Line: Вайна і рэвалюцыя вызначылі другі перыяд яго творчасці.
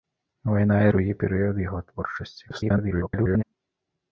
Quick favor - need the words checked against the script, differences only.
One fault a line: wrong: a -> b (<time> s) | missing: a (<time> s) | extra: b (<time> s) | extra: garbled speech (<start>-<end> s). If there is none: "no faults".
missing: рэвалюцыя вызначылі (0.9 s)
extra: garbled speech (2.5-3.4 s)